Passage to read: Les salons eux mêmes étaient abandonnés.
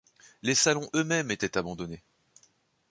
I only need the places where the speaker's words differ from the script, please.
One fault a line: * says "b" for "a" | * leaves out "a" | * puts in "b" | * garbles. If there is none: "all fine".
all fine